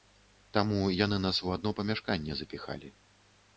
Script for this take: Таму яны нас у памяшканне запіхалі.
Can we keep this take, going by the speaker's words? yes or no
no